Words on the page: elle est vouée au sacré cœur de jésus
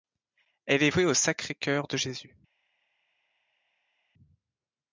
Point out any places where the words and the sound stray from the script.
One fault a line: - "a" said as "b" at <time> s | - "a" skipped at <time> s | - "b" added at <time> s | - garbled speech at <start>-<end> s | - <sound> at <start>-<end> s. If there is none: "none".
none